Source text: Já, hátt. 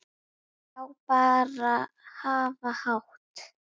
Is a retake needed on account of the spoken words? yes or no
yes